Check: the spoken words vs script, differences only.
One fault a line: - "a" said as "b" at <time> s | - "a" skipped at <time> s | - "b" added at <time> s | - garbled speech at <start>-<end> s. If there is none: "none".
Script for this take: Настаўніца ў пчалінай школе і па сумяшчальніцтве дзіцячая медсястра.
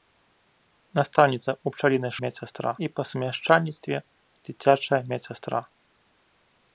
- "школе" said as "медсястра" at 2.2 s